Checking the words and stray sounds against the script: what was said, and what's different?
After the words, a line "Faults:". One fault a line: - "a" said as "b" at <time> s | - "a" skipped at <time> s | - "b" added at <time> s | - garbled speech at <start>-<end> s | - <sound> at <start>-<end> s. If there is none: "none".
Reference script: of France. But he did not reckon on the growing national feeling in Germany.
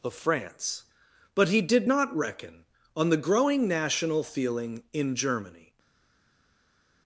of France. But he did not reckon on the growing national feeling in Germany.
Faults:
none